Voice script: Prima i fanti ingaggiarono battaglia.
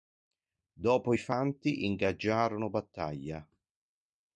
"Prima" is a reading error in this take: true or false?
true